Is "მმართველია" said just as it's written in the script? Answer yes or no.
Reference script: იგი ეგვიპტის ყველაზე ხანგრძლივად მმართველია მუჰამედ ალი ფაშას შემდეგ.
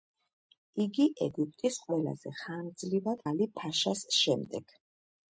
no